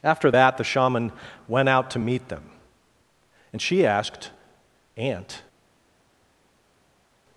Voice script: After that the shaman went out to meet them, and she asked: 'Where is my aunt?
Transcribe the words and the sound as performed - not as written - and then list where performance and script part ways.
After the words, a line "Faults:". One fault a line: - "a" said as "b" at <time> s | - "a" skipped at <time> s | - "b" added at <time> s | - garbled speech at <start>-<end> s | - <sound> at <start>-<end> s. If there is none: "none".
After that the shaman went out to meet them, and she asked: 'aunt?
Faults:
- "Where is my" skipped at 4.3 s